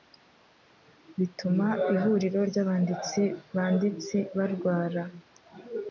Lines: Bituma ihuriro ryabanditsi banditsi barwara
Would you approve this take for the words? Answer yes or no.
yes